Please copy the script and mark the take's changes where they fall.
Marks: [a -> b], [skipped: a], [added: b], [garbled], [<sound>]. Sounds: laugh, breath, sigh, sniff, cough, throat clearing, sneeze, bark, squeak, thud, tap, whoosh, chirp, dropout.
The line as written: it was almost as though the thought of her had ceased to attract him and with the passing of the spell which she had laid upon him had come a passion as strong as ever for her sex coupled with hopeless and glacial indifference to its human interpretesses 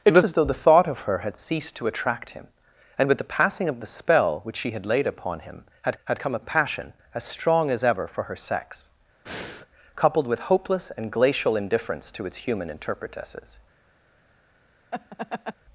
it was [skipped: almost] as though the thought of her had ceased to attract him and with the passing of the spell which she had laid upon him had [added: had] come a passion as strong as ever for her sex [breath] coupled with hopeless and glacial indifference to its human interpretesses [laugh]